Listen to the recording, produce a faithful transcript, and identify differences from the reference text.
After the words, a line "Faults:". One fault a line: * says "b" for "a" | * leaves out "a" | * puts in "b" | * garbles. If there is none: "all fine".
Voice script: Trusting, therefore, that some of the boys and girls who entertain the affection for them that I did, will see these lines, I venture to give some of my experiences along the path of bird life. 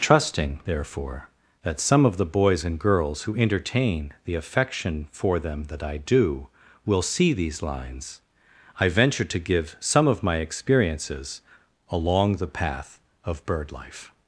Trusting, therefore, that some of the boys and girls who entertain the affection for them that I do, will see these lines, I venture to give some of my experiences along the path of bird life.
Faults:
* says "do" for "did"